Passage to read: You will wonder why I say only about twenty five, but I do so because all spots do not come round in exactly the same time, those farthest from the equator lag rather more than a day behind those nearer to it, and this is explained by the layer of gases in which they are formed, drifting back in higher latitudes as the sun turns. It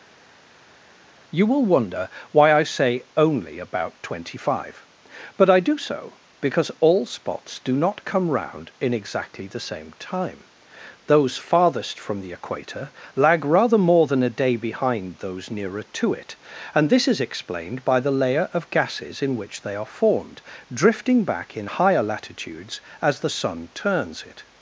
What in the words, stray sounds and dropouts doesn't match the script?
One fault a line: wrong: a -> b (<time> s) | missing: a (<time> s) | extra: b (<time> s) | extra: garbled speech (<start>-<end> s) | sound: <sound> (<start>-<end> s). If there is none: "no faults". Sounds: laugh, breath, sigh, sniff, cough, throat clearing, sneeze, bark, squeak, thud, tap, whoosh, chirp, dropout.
no faults